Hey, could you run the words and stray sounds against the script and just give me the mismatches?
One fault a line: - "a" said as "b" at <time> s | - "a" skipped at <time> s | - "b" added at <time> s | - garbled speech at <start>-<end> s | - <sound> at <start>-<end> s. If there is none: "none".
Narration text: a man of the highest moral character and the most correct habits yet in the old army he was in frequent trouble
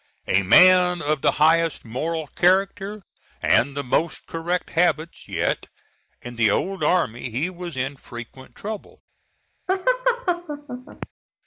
- laugh at 9.7-11.1 s